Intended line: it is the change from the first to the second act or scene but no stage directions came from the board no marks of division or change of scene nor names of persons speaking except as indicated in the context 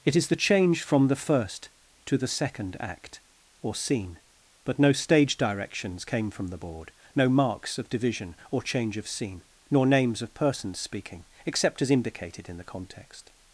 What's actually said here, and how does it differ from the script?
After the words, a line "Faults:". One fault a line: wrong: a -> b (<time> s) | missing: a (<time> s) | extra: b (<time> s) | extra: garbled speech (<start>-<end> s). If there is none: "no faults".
it is the change from the first to the second act or scene but no stage directions came from the board no marks of division or change of scene nor names of persons speaking except as indicated in the context
Faults:
no faults